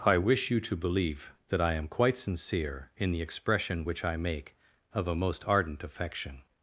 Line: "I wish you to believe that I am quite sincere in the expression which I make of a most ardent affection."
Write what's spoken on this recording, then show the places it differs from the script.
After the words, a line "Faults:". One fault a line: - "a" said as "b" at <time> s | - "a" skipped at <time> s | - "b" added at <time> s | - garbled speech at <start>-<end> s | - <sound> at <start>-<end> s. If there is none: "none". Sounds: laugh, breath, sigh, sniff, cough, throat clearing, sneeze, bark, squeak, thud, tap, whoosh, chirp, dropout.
"I wish you to believe that I am quite sincere in the expression which I make of a most ardent affection."
Faults:
none